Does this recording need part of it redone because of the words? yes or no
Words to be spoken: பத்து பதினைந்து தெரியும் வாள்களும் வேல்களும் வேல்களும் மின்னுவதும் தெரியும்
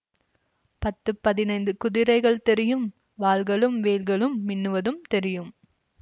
yes